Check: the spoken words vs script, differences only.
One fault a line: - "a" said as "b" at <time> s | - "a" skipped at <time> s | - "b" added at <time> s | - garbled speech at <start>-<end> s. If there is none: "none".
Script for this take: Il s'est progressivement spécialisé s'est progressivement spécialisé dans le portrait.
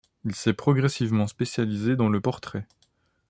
- "s'est progressivement spécialisé" skipped at 2.0 s